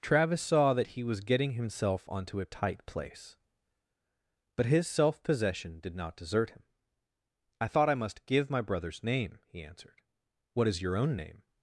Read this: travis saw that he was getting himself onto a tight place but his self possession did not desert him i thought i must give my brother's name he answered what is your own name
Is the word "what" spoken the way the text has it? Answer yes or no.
yes